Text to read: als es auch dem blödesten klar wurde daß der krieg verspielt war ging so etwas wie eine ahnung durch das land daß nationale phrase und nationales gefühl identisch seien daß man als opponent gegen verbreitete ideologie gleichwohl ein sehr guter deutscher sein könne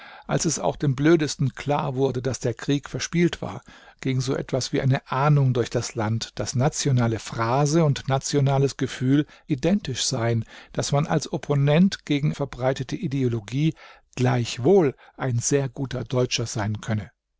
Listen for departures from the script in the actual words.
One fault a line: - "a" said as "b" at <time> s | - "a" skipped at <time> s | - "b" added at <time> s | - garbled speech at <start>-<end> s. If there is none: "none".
none